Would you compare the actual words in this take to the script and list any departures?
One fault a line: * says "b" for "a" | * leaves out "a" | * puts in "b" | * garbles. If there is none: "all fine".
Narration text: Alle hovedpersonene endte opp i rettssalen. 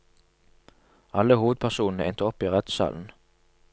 all fine